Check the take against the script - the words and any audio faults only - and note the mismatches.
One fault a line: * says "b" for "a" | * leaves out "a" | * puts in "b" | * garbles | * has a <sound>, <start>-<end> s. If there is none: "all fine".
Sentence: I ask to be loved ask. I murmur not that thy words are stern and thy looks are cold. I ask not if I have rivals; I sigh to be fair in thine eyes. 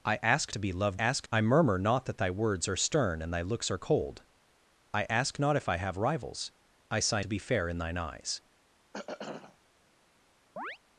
* has a throat clearing, 8.9-9.6 s
* has a chirp, 10.6-10.8 s